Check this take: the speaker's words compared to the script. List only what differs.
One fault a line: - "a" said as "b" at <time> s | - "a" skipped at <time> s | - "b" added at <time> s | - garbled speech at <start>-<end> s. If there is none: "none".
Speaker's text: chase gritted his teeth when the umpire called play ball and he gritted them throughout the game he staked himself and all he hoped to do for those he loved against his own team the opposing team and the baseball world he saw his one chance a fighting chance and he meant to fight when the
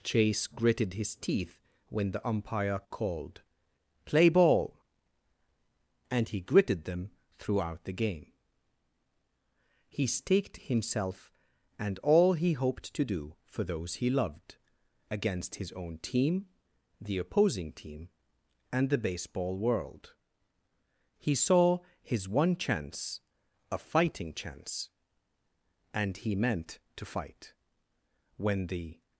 none